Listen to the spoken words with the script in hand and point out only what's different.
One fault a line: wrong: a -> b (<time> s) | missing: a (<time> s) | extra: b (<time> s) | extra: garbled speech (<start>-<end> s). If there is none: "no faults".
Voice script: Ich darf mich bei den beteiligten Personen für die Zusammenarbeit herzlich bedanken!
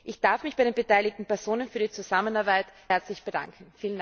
no faults